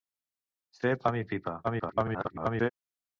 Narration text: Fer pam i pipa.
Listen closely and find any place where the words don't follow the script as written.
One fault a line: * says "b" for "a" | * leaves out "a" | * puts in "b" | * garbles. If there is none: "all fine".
* garbles